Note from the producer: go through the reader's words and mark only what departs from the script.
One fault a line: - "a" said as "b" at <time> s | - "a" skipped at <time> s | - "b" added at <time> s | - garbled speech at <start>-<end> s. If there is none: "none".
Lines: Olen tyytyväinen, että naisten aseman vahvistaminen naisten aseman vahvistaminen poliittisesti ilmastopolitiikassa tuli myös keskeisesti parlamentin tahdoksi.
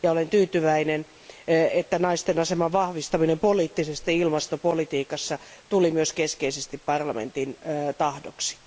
- "naisten aseman vahvistaminen" skipped at 3.4 s